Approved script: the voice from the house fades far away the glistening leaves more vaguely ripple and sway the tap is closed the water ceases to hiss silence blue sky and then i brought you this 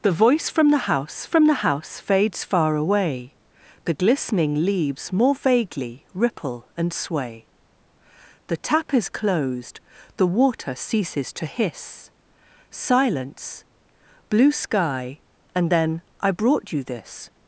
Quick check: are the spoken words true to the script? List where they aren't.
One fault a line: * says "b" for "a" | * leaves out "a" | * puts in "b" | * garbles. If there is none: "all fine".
* puts in "from the house"